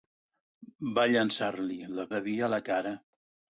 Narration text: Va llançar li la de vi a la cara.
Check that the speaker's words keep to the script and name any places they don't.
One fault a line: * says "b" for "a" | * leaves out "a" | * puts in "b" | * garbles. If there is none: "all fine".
all fine